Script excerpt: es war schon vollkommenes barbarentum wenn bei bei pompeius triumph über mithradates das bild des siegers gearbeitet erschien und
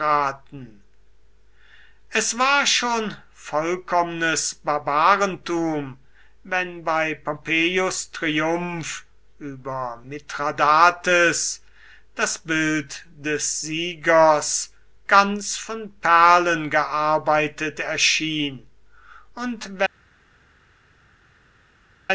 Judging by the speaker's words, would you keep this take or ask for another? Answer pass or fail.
fail